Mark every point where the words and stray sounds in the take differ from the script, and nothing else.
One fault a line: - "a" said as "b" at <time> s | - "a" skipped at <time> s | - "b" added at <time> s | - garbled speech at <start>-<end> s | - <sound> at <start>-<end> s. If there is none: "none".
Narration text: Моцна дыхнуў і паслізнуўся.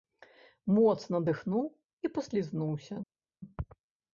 none